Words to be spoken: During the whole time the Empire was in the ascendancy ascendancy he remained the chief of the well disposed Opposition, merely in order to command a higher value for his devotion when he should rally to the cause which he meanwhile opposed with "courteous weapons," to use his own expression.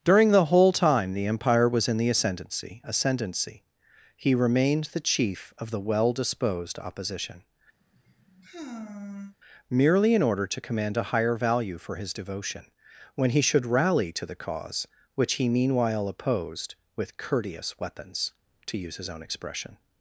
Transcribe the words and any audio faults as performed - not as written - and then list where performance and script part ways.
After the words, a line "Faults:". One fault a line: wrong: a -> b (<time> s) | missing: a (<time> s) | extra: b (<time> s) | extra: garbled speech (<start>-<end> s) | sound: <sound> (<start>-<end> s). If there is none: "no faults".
During the whole time the Empire was in the ascendancy ascendancy he remained the chief of the well disposed Opposition, merely in order to command a higher value for his devotion when he should rally to the cause which he meanwhile opposed with "courteous weapons," to use his own expression.
Faults:
sound: sigh (7.8-9.3 s)